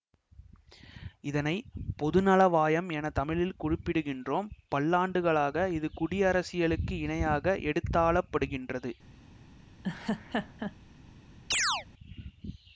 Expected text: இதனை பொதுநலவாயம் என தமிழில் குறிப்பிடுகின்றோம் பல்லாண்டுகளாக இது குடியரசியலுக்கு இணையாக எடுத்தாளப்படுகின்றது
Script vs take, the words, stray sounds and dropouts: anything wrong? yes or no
yes